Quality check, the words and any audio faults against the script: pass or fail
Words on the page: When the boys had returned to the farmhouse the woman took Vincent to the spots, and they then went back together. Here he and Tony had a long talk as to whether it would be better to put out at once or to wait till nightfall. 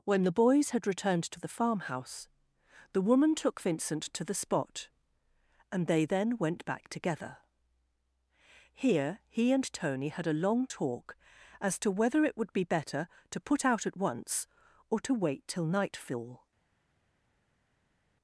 fail